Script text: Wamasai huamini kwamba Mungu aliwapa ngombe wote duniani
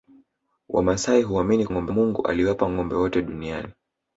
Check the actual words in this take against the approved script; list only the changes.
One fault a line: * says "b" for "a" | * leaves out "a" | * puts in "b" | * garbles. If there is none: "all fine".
* says "ngombe" for "kwamba"